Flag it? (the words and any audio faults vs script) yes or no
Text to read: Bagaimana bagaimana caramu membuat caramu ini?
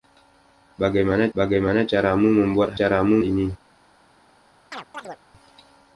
yes